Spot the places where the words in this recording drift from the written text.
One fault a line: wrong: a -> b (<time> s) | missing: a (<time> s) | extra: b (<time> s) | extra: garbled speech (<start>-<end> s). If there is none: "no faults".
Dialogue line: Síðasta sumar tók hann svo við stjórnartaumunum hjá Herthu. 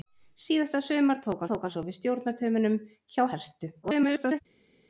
extra: tók (1.5 s)
extra: garbled speech (3.8-4.4 s)